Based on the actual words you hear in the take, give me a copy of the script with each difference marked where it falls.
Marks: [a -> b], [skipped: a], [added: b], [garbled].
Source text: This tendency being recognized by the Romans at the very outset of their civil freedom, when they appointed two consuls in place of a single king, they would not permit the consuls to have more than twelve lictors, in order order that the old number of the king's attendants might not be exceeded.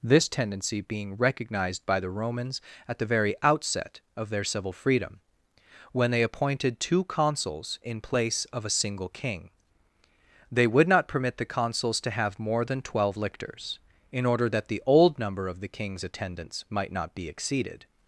This tendency being recognized by the Romans at the very outset of their civil freedom, when they appointed two consuls in place of a single king, they would not permit the consuls to have more than twelve lictors, in order [skipped: order] that the old number of the king's attendants might not be exceeded.